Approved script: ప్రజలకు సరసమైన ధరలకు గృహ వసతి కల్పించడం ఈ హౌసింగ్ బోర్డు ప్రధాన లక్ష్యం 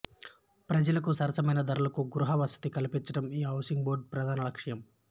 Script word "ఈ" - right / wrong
right